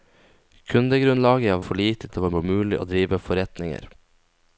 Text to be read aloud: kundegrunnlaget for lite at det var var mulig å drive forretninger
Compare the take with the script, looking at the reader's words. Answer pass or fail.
pass